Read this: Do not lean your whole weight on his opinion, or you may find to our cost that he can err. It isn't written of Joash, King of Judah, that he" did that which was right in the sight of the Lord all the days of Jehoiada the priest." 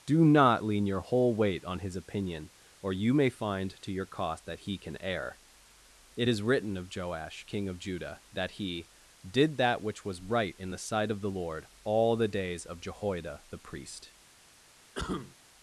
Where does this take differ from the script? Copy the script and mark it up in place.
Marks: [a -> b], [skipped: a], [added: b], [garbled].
Do not lean your whole weight on his opinion, or you may find to [our -> your] cost that he can err. It [isn't -> is] written of Joash, King of Judah, that he" did that which was right in the sight of the Lord all the days of Jehoiada the priest."